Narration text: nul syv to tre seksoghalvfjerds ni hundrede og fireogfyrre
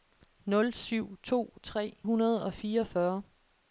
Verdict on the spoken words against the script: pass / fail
fail